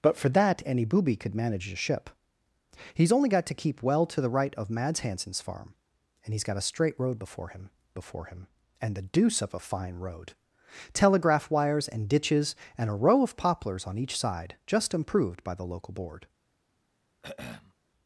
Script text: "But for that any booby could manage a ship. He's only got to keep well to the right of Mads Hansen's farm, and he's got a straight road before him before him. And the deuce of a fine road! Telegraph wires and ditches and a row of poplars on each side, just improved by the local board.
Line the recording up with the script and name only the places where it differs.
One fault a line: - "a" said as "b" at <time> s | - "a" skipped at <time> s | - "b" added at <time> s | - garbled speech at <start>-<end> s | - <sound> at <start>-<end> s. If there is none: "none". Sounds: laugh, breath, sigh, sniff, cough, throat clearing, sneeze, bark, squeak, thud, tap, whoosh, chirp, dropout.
- throat clearing at 17.2-17.7 s